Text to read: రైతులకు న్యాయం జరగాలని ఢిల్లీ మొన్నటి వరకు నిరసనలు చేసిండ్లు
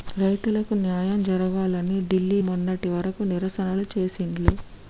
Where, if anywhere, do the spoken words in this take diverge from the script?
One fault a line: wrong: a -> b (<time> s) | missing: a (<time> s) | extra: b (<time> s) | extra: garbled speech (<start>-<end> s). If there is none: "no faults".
no faults